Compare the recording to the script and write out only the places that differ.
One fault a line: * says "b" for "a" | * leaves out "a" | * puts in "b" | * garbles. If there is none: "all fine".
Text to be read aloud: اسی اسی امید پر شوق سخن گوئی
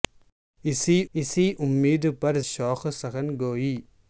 all fine